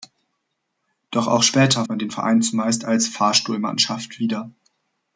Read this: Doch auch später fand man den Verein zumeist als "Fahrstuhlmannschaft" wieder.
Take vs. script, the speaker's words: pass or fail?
fail